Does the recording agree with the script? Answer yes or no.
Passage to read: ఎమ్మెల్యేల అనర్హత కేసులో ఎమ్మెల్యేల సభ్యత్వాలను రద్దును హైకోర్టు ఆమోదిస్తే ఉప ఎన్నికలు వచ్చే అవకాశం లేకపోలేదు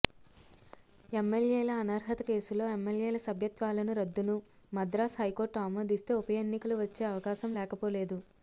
no